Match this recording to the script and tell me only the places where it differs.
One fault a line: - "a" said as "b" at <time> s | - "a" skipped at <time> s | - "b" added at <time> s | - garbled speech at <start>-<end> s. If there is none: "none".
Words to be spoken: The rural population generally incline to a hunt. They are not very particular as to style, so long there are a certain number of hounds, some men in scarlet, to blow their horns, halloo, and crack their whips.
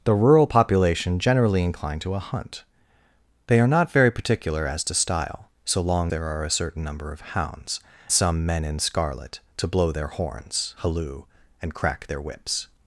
none